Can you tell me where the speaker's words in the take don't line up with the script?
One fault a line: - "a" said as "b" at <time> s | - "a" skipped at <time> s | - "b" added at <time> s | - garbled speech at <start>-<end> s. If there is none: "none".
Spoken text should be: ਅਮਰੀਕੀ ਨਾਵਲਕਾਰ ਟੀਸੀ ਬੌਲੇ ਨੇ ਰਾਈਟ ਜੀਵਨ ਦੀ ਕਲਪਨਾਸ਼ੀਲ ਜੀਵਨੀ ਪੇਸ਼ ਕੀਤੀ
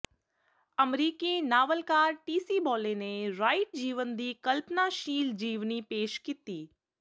none